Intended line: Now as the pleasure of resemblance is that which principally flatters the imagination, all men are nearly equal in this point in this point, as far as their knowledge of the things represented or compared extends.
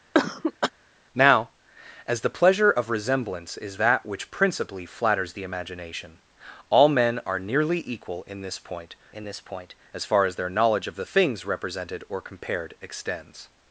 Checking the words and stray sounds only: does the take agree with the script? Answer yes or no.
no